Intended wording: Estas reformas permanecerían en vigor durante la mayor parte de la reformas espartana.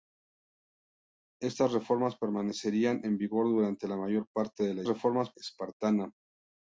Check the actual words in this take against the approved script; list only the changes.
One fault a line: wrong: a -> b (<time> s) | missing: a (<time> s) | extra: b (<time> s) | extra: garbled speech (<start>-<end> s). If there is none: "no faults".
no faults